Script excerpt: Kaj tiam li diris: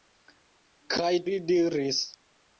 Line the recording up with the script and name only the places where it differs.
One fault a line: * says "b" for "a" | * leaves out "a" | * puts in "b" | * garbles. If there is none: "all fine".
* leaves out "tiam"